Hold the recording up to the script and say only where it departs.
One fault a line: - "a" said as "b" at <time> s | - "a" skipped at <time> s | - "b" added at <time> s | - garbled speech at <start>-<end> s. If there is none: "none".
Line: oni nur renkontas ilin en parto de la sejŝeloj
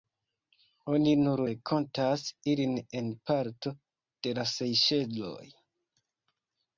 none